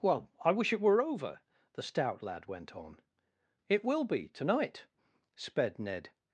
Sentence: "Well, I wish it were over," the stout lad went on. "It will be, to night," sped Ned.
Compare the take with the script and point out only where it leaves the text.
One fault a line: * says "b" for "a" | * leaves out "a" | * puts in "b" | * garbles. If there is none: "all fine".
all fine